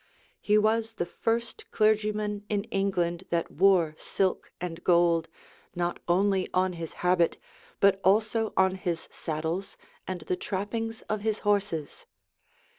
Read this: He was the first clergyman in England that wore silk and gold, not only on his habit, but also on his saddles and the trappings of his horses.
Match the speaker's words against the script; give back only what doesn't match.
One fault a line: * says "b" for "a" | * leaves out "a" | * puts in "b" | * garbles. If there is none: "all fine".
all fine